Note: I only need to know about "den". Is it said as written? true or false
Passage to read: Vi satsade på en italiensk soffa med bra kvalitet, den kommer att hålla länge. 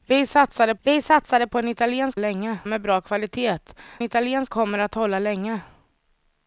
false